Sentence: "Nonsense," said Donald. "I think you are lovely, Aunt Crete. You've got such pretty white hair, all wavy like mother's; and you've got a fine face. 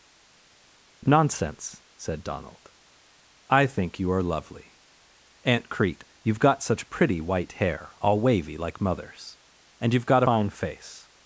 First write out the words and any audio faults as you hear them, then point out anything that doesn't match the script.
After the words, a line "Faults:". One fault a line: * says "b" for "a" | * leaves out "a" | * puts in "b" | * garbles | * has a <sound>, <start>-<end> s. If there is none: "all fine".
"Nonsense," said Donald. "I think you are lovely, Aunt Crete. You've got such pretty white hair, all wavy like mother's; and you've got fine face.
Faults:
* leaves out "a"